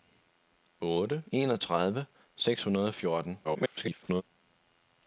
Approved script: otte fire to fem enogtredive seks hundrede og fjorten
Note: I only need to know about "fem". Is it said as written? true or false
false